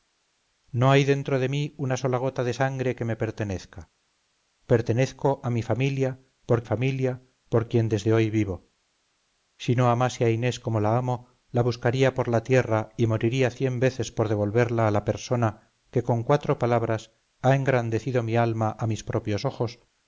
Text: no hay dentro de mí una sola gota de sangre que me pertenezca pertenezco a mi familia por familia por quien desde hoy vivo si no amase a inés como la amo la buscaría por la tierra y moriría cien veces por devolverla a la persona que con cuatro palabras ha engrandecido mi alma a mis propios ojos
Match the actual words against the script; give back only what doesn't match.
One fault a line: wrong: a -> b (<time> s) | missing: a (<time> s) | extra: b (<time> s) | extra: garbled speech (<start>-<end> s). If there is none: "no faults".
no faults